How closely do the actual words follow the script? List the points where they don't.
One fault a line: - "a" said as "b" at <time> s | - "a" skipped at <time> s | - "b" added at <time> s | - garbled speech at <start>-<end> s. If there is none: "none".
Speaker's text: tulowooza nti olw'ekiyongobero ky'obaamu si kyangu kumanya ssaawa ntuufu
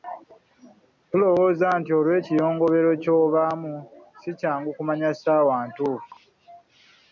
none